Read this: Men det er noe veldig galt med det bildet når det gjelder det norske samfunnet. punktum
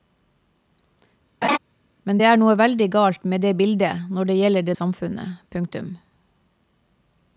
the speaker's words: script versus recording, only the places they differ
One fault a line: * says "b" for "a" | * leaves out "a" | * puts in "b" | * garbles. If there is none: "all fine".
* leaves out "norske"